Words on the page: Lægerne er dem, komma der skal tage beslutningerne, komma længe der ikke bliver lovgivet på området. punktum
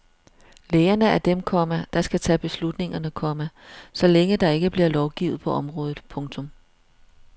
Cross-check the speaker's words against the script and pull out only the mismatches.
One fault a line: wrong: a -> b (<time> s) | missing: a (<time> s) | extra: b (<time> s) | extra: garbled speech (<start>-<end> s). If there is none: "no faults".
extra: så (3.9 s)